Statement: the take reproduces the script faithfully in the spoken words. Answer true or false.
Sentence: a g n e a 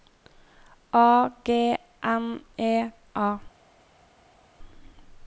true